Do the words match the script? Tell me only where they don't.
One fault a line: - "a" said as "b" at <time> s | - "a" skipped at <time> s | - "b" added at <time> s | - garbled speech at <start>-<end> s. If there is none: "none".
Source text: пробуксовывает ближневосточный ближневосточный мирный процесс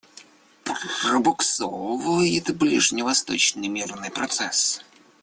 - "ближневосточный" skipped at 3.7 s